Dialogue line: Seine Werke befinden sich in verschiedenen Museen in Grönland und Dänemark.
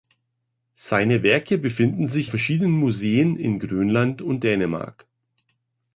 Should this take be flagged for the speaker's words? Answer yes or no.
yes